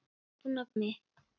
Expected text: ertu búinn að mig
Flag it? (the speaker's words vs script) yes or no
no